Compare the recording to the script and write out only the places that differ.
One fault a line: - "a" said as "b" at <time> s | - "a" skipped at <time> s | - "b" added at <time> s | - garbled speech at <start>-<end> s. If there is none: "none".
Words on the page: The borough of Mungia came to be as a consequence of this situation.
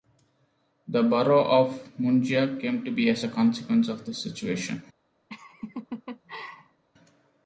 none